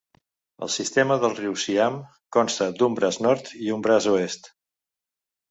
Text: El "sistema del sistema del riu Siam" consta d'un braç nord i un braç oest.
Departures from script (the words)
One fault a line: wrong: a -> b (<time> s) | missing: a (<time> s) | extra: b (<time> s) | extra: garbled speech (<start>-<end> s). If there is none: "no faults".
missing: sistema del (1.4 s)